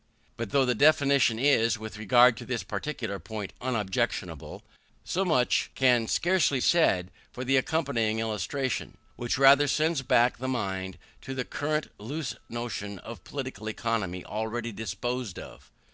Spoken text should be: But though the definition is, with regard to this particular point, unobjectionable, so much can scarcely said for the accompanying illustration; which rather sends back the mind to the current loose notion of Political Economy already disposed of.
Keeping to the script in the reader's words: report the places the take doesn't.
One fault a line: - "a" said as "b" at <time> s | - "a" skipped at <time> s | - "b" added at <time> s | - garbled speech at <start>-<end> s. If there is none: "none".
none